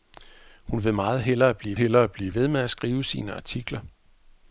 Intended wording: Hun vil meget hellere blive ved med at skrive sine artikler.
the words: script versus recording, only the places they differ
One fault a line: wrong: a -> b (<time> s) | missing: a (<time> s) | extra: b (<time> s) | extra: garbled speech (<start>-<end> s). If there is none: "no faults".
extra: hellere blive (1.8 s)